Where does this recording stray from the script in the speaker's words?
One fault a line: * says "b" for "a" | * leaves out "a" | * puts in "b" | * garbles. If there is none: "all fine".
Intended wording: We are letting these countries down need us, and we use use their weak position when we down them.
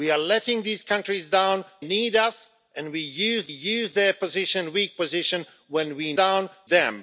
all fine